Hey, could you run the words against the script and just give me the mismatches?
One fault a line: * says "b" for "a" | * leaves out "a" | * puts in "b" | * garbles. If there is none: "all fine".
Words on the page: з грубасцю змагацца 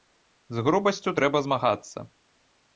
* puts in "трэба"